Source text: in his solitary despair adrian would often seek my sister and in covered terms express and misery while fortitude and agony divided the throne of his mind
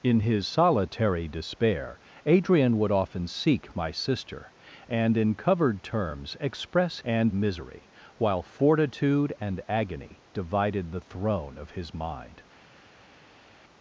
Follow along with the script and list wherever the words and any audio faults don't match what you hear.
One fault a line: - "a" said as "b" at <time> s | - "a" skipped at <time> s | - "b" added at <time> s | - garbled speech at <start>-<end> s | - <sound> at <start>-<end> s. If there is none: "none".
none